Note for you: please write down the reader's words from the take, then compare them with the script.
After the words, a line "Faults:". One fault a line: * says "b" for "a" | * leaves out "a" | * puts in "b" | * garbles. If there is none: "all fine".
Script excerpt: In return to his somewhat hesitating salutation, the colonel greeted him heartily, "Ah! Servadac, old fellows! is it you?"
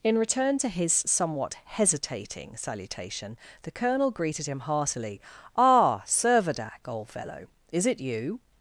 In return to his somewhat hesitating salutation, the colonel greeted him heartily, "Ah! Servadac, old fellow! is it you?"
Faults:
* says "fellow" for "fellows"